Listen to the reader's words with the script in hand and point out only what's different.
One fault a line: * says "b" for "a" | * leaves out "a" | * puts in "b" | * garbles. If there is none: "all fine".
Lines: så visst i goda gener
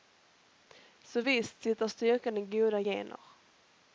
* puts in "sitter styrkan"